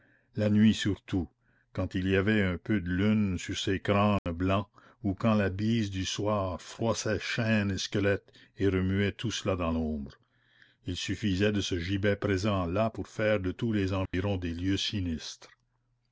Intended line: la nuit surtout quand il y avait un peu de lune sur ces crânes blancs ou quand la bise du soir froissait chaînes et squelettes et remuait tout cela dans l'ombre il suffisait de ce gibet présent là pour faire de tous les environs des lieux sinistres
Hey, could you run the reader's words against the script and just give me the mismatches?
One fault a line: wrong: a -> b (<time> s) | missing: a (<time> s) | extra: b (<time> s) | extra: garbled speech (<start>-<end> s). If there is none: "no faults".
no faults